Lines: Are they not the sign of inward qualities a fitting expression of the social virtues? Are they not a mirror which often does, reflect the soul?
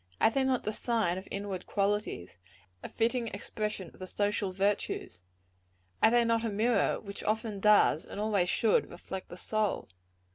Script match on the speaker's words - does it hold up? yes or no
no